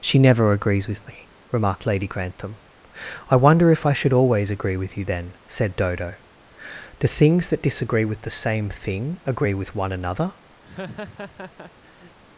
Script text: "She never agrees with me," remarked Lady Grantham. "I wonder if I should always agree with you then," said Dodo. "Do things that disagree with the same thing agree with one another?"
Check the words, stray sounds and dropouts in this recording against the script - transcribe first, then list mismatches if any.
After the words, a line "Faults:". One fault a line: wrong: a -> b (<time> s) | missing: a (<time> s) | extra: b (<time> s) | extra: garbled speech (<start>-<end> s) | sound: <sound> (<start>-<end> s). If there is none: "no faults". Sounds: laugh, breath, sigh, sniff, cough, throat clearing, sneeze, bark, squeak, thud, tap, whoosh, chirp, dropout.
"She never agrees with me," remarked Lady Grantham. "I wonder if I should always agree with you then," said Dodo. "Do things that disagree with the same thing agree with one another?"
Faults:
sound: laugh (10.6-12.2 s)